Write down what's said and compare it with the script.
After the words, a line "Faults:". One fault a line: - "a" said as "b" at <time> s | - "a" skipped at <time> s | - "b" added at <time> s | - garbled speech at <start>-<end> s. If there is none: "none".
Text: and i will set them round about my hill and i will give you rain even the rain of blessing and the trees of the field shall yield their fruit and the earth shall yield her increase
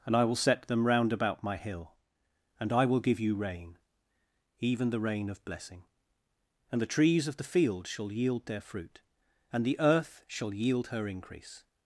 and i will set them round about my hill and i will give you rain even the rain of blessing and the trees of the field shall yield their fruit and the earth shall yield her increase
Faults:
none